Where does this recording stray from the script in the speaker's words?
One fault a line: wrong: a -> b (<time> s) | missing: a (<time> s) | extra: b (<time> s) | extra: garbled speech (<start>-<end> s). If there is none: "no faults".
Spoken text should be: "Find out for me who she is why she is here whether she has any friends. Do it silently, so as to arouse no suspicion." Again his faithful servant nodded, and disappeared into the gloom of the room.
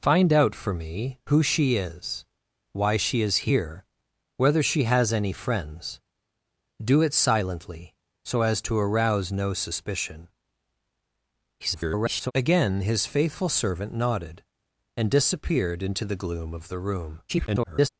extra: garbled speech (11.6-12.3 s)
extra: garbled speech (17.3-17.9 s)